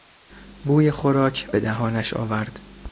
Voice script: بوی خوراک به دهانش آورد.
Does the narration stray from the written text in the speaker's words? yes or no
no